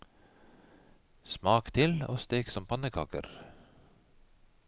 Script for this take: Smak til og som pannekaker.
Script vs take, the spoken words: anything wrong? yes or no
yes